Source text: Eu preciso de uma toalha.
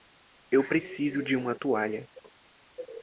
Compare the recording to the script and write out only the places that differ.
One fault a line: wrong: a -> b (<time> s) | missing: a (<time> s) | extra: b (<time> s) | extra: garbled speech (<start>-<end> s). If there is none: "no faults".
no faults